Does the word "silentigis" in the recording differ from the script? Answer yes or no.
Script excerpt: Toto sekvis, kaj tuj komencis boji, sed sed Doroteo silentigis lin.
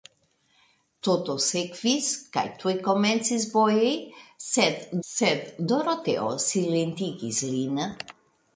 no